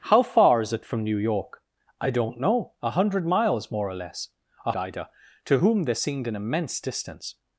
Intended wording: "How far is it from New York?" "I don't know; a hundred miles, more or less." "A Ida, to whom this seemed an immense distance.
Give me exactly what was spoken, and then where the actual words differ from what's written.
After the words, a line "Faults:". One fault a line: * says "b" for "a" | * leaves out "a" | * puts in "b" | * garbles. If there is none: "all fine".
"How far is it from New York?" "I don't know; a hundred miles, more or less." "A Ida, to whom this seemed an immense distance.
Faults:
all fine